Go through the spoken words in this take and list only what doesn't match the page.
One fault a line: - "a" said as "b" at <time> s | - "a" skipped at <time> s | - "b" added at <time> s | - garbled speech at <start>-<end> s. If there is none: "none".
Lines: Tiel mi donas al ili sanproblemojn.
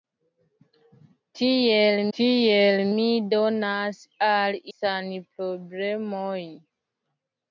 - "tiel" added at 2.2 s
- "ili" skipped at 4.6 s